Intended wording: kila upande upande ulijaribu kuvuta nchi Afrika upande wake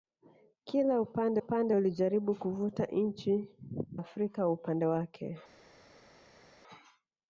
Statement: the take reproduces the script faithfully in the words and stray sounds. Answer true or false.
true